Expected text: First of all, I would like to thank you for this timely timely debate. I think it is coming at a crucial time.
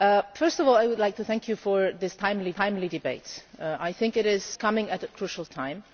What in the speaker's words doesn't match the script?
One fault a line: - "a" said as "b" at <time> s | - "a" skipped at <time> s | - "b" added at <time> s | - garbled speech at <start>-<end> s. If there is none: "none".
none